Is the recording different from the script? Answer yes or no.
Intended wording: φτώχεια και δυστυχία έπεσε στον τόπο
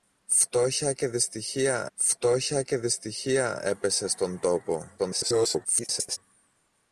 yes